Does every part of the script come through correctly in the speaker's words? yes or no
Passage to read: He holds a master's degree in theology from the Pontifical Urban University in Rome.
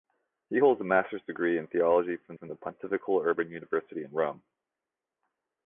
no